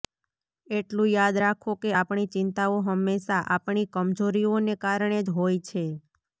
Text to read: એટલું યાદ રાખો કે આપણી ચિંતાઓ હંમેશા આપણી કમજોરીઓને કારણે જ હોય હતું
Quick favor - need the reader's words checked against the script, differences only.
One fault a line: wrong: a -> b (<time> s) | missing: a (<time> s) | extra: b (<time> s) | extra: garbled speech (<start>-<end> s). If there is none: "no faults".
wrong: હતું -> છે (5.6 s)